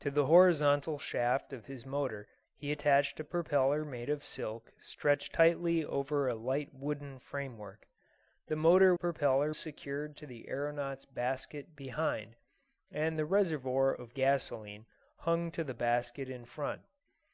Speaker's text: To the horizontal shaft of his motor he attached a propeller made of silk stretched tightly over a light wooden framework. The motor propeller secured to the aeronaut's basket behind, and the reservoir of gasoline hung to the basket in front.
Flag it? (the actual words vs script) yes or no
no